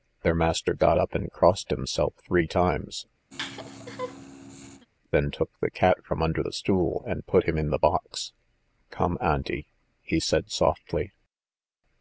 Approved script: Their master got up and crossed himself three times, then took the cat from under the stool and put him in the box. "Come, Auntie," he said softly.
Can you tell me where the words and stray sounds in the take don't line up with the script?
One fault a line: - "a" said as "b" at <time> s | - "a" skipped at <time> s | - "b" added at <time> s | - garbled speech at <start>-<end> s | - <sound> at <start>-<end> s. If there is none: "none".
- laugh at 3.3-4.9 s